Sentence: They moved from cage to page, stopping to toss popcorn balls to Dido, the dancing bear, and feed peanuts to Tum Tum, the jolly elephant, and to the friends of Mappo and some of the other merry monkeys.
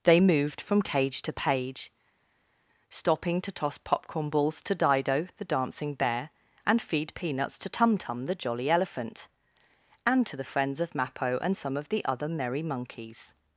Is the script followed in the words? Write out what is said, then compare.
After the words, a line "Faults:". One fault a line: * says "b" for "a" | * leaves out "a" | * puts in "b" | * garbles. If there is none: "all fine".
They moved from cage to page, stopping to toss popcorn balls to Dido, the dancing bear, and feed peanuts to Tum Tum, the jolly elephant, and to the friends of Mappo and some of the other merry monkeys.
Faults:
all fine